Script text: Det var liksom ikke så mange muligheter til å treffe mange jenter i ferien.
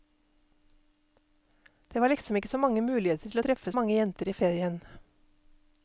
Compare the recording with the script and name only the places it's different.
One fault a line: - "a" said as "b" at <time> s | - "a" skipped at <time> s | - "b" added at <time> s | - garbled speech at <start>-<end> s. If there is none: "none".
none